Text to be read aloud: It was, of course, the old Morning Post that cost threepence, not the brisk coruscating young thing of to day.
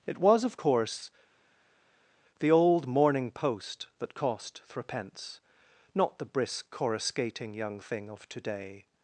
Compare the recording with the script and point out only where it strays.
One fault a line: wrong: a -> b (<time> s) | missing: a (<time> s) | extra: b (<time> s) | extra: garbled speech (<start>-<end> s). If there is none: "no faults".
no faults